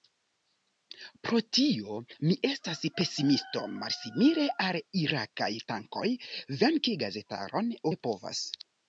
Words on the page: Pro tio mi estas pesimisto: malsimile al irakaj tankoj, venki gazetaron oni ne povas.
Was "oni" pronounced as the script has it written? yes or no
no